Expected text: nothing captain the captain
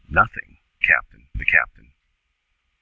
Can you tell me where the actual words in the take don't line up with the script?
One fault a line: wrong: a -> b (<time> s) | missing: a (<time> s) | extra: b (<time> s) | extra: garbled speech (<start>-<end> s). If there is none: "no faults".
no faults